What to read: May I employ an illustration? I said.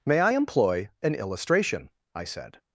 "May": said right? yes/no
yes